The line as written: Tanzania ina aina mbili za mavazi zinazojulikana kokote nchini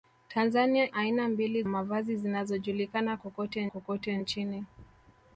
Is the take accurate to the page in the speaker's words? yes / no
no